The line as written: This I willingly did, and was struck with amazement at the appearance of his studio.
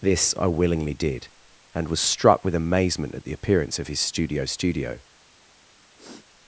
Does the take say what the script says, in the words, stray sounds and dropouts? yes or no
no